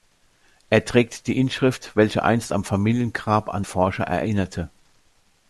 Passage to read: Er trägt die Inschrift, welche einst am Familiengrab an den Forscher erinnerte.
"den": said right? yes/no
no